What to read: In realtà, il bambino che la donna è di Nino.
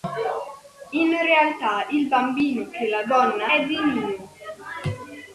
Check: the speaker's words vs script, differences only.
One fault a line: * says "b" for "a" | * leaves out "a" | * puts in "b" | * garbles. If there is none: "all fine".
all fine